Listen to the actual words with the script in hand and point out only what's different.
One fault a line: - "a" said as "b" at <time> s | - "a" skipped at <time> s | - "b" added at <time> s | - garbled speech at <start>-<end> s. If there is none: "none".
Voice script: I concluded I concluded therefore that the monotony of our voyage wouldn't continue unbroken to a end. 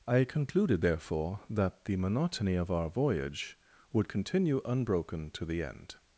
- "I concluded" skipped at 0.8 s
- "wouldn't" said as "would" at 3.9 s
- "a" said as "the" at 5.5 s